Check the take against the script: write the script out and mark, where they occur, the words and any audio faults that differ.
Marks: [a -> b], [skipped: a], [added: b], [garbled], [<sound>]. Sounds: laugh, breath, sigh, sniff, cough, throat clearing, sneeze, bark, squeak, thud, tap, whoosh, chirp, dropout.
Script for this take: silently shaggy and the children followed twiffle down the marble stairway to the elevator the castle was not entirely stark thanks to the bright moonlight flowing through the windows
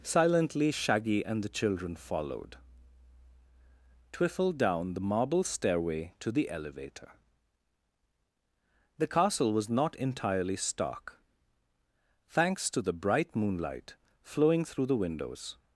silently shaggy and the children followed twiffle down the marble stairway to the elevator the castle was not entirely stark thanks to the bright moonlight flowing through the windows